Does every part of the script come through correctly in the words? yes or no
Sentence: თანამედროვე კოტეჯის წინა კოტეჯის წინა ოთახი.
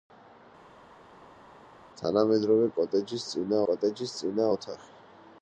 yes